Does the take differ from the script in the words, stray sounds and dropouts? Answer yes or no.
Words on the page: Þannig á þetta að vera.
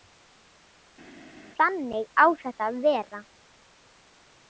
no